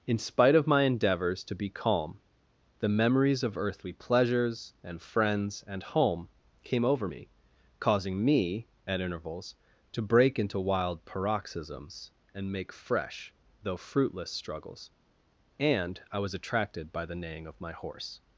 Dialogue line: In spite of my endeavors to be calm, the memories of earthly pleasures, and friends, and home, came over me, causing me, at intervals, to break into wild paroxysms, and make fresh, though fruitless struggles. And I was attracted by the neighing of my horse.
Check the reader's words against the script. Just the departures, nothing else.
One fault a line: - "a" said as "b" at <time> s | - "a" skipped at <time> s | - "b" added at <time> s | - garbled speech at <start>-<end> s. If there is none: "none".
none